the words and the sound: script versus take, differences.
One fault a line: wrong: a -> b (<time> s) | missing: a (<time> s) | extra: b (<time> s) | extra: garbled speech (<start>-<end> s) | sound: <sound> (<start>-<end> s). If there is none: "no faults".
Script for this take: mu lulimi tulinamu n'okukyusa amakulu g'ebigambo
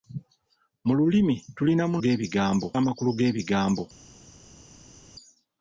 wrong: n'okukyusa -> g'ebigambo (2.0 s)